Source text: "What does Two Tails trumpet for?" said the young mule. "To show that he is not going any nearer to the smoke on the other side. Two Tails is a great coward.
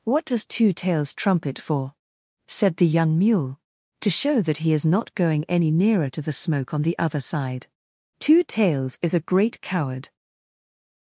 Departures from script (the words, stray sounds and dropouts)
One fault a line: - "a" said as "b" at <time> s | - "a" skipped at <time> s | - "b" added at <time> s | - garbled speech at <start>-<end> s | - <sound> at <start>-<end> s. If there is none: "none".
none